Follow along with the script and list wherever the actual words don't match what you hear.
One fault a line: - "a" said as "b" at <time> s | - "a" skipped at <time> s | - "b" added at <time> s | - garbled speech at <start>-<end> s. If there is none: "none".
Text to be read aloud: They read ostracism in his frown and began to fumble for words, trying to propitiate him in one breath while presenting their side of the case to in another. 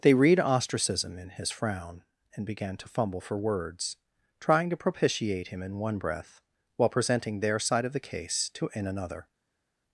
none